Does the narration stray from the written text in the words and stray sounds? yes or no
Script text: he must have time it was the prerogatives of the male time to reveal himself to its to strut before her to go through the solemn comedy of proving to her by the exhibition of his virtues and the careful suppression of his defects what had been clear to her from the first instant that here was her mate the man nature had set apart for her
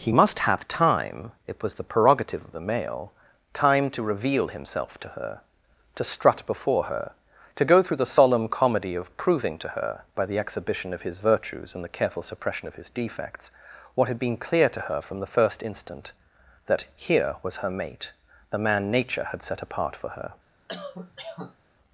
yes